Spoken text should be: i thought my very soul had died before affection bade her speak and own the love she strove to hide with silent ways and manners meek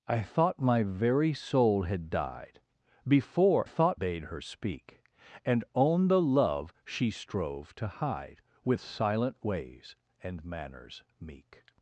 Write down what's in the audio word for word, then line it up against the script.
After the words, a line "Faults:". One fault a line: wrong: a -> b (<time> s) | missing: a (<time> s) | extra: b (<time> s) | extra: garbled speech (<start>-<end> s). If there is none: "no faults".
i thought my very soul had died before thought bade her speak and own the love she strove to hide with silent ways and manners meek
Faults:
wrong: affection -> thought (3.6 s)